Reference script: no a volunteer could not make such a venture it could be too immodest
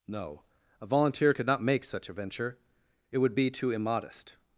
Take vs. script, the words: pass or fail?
fail